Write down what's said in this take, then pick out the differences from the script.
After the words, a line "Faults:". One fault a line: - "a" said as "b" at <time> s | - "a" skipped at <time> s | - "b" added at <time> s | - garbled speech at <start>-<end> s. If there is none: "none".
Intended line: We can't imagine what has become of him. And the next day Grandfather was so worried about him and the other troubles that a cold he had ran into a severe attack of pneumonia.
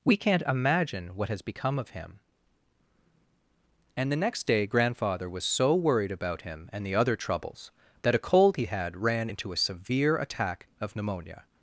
We can't imagine what has become of him. And the next day Grandfather was so worried about him and the other troubles that a cold he had ran into a severe attack of pneumonia.
Faults:
none